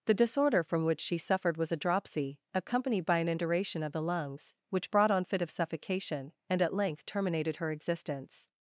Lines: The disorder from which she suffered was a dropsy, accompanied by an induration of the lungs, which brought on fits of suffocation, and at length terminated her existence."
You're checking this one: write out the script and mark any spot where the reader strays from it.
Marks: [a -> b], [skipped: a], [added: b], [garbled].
The disorder from which she suffered was a dropsy, accompanied by an induration of the lungs, which brought on [fits -> fit] of suffocation, and at length terminated her existence."